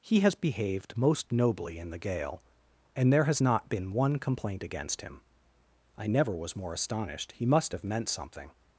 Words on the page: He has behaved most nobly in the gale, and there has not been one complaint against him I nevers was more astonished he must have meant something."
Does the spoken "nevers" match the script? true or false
false